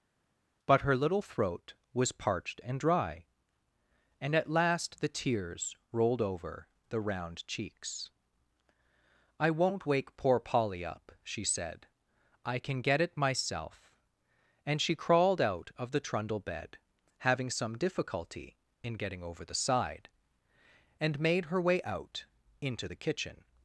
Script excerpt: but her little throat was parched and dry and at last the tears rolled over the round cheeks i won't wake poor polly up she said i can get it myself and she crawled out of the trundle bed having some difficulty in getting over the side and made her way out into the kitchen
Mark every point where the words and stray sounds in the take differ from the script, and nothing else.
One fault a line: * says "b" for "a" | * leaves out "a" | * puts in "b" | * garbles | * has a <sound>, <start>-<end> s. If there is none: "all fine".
all fine